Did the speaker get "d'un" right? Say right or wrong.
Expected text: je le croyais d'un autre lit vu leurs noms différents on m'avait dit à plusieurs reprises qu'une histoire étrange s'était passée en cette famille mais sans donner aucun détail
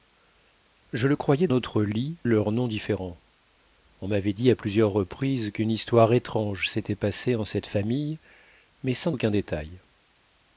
wrong